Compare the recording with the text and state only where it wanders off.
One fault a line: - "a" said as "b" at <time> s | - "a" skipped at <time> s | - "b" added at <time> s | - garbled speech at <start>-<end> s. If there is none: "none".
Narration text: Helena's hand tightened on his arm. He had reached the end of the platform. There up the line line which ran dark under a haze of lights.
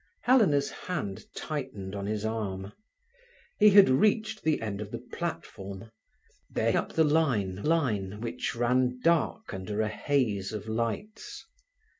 none